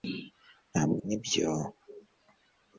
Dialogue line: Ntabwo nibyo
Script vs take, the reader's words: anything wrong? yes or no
no